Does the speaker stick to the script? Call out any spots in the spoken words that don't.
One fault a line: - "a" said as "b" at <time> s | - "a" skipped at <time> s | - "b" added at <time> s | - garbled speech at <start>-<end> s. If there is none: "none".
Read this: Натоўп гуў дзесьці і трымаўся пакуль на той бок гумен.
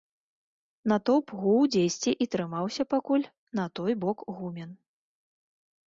none